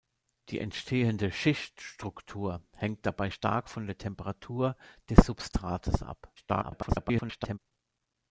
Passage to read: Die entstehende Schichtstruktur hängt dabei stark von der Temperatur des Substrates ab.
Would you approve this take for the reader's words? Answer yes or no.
no